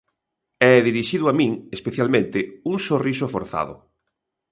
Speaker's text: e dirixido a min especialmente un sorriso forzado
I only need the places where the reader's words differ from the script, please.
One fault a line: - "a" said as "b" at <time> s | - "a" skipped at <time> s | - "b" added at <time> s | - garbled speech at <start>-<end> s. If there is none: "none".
none